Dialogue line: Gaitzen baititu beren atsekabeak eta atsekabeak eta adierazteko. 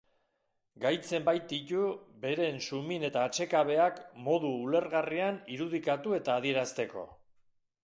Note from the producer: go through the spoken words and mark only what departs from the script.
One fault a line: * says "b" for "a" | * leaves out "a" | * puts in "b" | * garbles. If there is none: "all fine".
* says "sumin" for "atsekabeak"
* puts in "modu ulergarrian irudikatu"